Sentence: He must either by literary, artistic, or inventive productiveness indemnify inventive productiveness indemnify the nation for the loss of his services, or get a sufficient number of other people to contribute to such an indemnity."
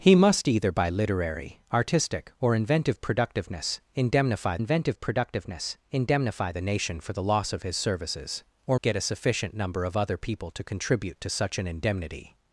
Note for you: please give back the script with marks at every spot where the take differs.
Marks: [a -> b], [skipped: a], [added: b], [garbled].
He must either by literary, artistic, or inventive productiveness indemnify inventive productiveness indemnify the nation for the loss of his services, or get a sufficient number of other people to contribute to such an indemnity."